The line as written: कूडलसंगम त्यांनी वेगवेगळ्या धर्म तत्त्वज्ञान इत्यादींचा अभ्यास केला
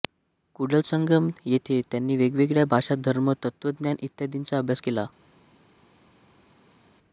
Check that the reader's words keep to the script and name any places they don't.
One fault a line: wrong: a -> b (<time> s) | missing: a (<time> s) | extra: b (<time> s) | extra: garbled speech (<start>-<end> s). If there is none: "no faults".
extra: येथे (1.4 s)
extra: भाषा (2.7 s)